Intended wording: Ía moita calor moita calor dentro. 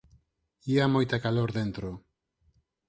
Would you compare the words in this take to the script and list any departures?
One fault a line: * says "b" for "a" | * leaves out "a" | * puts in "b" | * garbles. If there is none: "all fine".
* leaves out "moita calor"